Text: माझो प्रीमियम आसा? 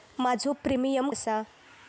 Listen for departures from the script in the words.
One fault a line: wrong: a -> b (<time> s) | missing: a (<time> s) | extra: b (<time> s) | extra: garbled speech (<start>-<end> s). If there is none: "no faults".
no faults